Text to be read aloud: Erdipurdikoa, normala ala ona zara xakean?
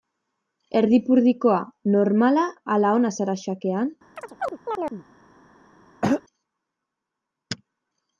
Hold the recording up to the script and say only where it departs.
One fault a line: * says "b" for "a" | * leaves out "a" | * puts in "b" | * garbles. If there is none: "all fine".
all fine